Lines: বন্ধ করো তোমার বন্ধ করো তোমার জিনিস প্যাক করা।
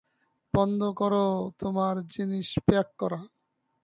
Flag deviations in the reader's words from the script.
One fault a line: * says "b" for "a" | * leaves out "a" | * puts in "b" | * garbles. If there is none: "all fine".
* leaves out "বন্ধ করো তোমার"